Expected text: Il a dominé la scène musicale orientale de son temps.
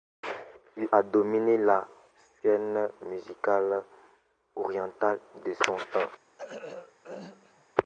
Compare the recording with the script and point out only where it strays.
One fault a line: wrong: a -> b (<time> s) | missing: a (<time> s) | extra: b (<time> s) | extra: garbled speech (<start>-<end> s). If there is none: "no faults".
no faults